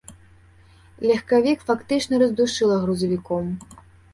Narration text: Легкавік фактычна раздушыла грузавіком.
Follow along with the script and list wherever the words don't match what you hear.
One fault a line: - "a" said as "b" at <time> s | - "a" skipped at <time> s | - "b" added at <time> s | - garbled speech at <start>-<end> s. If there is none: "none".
none